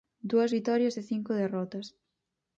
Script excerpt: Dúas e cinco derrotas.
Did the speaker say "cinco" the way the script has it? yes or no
yes